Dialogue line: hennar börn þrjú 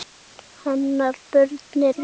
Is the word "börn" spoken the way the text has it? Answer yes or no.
yes